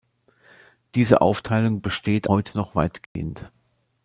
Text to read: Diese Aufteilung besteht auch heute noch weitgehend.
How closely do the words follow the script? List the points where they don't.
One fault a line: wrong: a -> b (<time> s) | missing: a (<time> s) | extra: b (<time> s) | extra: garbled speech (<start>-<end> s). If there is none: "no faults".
missing: auch (2.3 s)